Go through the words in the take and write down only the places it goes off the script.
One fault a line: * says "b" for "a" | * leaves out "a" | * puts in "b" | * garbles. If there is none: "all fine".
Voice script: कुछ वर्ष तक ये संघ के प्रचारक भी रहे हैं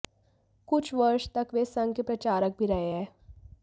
* says "वे" for "ये"